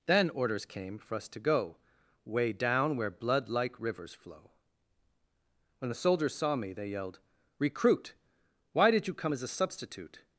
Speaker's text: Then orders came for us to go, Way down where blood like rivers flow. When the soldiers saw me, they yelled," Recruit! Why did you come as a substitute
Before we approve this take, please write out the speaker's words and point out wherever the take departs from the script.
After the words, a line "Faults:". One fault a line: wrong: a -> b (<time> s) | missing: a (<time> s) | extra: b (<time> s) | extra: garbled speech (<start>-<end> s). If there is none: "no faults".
Then orders came for us to go, Way down where blood like rivers flow. When the soldiers saw me, they yelled," Recruit! Why did you come as a substitute
Faults:
no faults